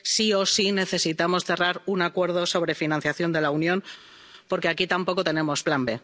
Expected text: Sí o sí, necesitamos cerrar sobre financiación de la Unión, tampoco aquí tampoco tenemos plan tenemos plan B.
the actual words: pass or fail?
fail